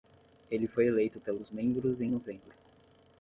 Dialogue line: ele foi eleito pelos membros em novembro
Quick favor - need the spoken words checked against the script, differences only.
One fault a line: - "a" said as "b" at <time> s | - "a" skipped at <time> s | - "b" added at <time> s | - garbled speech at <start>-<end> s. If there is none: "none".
none